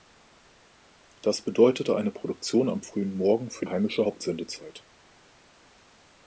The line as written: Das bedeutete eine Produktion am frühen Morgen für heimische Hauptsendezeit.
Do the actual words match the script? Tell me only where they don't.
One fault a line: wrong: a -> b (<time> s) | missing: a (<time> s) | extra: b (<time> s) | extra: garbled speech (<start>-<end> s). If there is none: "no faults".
no faults